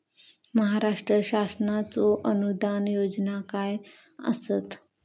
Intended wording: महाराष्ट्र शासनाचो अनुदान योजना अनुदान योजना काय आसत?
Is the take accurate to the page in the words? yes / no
no